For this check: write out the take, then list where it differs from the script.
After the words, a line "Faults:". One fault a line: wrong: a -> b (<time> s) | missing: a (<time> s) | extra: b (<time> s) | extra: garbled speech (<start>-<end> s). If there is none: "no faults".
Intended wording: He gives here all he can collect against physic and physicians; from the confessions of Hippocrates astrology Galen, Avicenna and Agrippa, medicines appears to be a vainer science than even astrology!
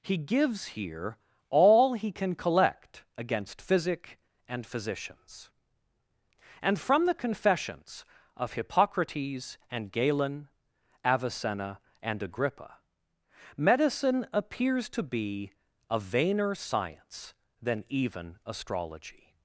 He gives here all he can collect against physic and physicians; and from the confessions of Hippocrates and Galen, Avicenna and Agrippa, medicine appears to be a vainer science than even astrology!
Faults:
extra: and (6.6 s)
wrong: astrology -> and (9.7 s)
wrong: medicines -> medicine (13.6 s)